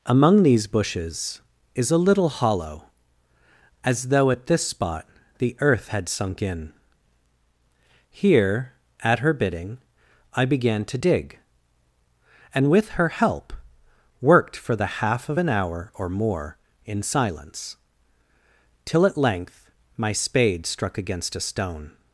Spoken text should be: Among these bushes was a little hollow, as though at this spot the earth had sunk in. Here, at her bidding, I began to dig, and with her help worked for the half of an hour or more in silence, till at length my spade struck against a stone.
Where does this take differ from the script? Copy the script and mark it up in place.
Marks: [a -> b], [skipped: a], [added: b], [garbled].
Among these bushes [was -> is] a little hollow, as though at this spot the earth had sunk in. Here, at her bidding, I began to dig, and with her help worked for the half of an hour or more in silence, till at length my spade struck against a stone.